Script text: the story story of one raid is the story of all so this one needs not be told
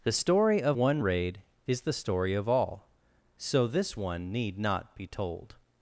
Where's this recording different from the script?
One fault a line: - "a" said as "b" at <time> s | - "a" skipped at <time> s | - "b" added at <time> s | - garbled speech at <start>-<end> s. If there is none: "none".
- "story" skipped at 0.6 s
- "needs" said as "need" at 4.3 s